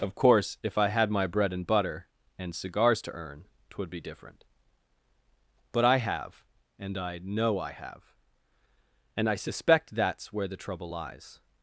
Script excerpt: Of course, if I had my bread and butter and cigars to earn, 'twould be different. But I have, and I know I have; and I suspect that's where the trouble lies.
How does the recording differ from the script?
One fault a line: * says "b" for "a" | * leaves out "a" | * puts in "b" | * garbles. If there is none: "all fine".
all fine